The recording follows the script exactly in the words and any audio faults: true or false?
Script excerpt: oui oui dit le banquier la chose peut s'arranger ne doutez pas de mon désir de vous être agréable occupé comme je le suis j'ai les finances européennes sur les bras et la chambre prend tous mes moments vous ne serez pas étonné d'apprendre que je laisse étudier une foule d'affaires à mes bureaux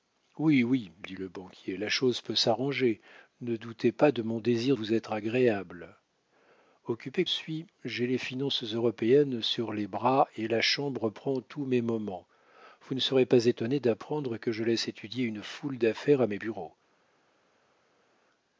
false